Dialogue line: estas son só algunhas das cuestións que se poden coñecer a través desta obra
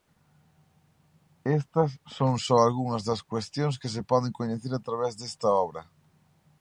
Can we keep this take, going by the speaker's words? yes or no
yes